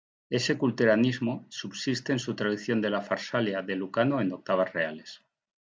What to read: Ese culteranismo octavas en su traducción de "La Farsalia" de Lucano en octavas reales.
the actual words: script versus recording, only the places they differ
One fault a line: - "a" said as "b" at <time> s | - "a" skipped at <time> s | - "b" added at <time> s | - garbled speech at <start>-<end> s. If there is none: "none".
- "octavas" said as "subsiste" at 1.5 s